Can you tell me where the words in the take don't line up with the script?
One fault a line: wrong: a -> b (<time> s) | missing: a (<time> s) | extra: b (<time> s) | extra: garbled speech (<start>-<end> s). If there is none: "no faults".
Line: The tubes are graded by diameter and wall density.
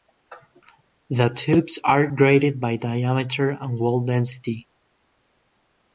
no faults